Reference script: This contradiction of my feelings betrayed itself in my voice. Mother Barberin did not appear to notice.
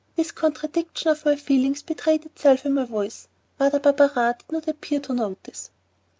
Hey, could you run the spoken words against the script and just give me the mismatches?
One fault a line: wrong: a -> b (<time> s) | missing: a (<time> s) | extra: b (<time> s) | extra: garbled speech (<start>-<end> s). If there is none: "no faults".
no faults